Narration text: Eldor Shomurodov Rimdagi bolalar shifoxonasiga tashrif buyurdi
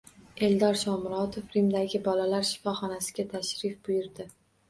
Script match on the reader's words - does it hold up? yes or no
yes